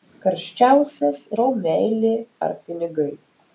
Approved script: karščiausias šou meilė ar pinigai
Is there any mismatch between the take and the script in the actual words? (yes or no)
no